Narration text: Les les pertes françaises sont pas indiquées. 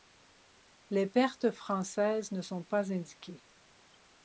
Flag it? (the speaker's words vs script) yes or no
yes